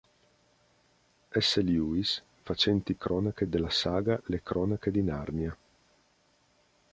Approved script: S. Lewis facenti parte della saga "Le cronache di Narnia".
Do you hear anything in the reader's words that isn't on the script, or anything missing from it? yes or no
yes